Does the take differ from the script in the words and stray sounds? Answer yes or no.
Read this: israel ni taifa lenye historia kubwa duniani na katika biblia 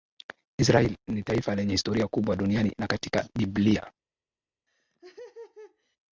yes